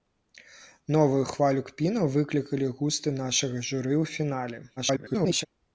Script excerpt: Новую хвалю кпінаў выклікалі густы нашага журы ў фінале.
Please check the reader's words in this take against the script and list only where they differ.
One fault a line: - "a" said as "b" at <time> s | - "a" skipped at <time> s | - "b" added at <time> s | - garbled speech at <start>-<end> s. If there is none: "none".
- garbled speech at 4.8-5.5 s